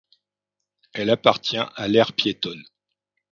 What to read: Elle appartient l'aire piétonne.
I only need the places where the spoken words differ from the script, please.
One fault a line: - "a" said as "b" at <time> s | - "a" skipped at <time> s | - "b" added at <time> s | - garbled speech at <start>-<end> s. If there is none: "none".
- "à" added at 1.8 s